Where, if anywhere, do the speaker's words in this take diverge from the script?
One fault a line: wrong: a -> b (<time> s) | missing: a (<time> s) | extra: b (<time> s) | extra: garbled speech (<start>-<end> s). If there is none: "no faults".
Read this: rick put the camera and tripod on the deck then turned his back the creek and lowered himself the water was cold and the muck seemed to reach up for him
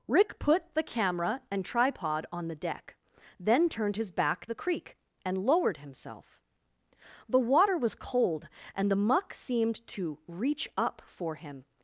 no faults